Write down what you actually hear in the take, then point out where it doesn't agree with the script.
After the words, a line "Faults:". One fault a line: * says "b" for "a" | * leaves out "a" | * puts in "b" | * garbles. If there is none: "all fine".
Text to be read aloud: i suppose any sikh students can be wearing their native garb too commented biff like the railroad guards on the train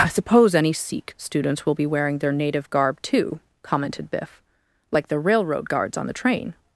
i suppose any sikh students will be wearing their native garb too commented biff like the railroad guards on the train
Faults:
* says "will" for "can"